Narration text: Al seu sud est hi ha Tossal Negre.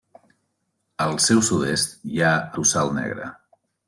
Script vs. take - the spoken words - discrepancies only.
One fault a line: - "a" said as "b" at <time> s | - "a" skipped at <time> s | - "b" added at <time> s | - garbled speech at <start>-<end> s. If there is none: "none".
none